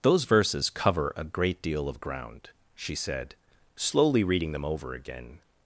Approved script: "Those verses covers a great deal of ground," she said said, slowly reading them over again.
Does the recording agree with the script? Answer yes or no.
no